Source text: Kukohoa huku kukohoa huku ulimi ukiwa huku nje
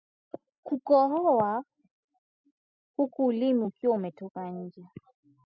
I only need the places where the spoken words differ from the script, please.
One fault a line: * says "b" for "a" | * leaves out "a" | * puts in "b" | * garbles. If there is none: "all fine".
* leaves out "kukohoa huku"
* says "umetoka" for "huku"